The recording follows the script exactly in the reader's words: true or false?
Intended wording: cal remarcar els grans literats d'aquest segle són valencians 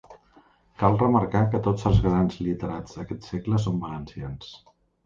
false